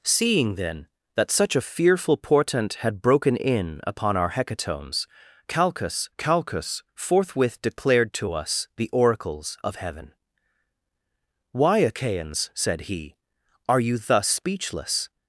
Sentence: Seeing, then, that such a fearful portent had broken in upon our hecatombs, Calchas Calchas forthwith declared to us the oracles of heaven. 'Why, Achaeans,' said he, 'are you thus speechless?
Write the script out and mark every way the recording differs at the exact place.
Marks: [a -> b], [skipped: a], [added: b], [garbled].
Seeing, then, that such a fearful portent had broken in upon our hecatombs, Calchas Calchas forthwith declared to us the oracles of heaven. 'Why, Achaeans,' said he, 'are you thus speechless?